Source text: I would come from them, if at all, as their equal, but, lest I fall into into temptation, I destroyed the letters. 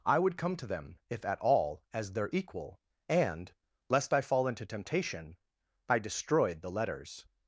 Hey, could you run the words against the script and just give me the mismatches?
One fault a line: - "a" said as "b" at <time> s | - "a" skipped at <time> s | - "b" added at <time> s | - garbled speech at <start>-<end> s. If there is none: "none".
- "from" said as "to" at 0.6 s
- "but" said as "and" at 3.1 s
- "into" skipped at 4.6 s